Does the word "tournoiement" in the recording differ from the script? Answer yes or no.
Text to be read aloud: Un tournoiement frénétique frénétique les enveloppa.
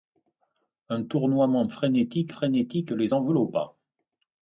no